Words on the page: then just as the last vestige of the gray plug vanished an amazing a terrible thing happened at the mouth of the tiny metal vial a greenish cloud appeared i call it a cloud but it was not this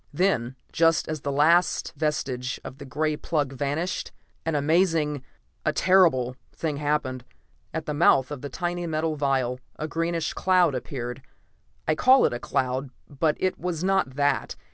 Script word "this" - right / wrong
wrong